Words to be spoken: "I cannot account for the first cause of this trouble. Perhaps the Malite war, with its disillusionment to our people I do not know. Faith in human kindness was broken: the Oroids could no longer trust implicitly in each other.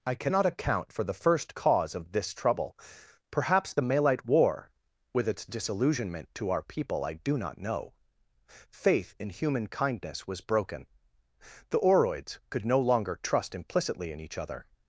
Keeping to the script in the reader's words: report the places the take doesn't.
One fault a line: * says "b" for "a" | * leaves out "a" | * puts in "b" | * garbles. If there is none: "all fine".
all fine